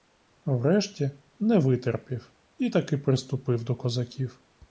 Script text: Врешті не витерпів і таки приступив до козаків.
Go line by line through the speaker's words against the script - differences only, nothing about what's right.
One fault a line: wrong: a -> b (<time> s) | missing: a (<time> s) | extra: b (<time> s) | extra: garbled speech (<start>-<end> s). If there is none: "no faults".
no faults